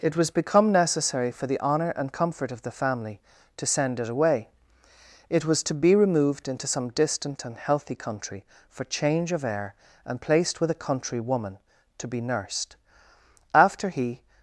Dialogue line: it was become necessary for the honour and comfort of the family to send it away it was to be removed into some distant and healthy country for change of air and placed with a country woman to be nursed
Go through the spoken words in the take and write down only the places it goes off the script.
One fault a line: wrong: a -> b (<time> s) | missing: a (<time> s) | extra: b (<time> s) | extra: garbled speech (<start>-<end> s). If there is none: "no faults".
extra: after he (13.5 s)